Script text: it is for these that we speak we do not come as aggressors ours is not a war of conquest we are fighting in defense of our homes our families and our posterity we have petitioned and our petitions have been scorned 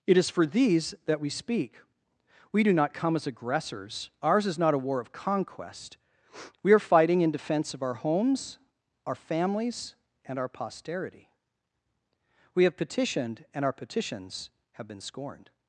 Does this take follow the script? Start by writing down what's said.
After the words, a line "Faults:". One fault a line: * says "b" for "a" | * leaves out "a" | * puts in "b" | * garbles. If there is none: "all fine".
it is for these that we speak we do not come as aggressors ours is not a war of conquest we are fighting in defense of our homes our families and our posterity we have petitioned and our petitions have been scorned
Faults:
all fine